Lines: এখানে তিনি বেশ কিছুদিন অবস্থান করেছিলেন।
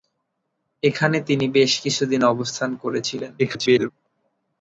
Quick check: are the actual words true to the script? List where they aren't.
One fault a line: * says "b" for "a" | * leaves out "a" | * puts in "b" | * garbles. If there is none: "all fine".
* garbles